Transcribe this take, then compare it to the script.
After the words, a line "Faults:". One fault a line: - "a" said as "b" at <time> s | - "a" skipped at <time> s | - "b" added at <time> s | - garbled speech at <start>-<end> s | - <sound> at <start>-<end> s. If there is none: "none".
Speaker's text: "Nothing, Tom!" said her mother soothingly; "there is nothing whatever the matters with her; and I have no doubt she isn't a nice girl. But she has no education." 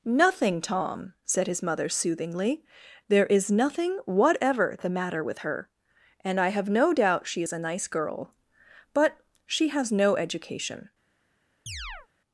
"Nothing, Tom!" said his mother soothingly; "there is nothing whatever the matter with her; and I have no doubt she is a nice girl. But she has no education."
Faults:
- "her" said as "his" at 1.4 s
- "matters" said as "matter" at 4.9 s
- "isn't" said as "is" at 7.4 s
- chirp at 11.7-12.1 s